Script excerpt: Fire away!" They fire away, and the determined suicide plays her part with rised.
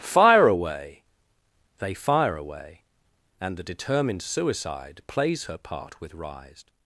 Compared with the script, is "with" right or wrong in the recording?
right